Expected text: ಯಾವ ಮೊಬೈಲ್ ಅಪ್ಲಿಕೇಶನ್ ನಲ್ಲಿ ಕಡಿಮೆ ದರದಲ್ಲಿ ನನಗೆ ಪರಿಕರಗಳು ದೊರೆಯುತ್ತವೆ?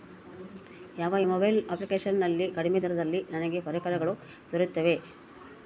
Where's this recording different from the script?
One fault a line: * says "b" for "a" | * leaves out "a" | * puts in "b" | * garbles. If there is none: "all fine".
all fine